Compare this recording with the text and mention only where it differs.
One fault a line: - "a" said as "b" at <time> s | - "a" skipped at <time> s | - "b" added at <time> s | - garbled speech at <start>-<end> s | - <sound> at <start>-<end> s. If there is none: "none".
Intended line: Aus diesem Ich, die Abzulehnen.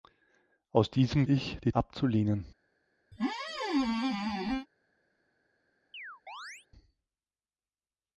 - squeak at 3.1-4.7 s
- chirp at 5.9-6.7 s